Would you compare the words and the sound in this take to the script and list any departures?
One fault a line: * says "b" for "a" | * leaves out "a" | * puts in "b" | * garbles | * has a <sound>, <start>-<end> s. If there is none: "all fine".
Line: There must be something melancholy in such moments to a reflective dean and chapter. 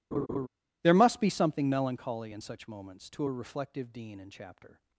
* has a laugh, 0.1-0.5 s